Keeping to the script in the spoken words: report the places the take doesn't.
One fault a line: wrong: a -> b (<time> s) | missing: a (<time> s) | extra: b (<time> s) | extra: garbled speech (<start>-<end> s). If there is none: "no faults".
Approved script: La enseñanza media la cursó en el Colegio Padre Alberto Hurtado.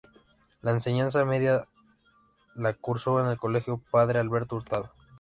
no faults